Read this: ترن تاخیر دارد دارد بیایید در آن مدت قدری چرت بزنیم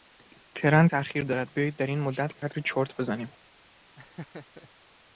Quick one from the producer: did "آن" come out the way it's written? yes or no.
no